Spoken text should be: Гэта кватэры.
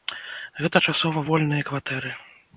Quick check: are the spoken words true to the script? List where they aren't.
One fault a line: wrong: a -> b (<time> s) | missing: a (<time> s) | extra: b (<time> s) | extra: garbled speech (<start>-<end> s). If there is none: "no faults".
extra: часова вольныя (0.9 s)